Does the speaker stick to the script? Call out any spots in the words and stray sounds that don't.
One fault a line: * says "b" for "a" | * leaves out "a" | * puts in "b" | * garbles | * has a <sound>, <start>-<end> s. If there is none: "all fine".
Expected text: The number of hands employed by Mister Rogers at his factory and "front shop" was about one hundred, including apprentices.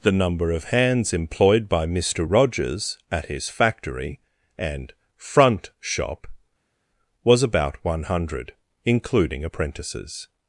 all fine